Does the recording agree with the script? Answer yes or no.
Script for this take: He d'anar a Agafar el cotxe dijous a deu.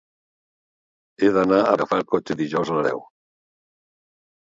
yes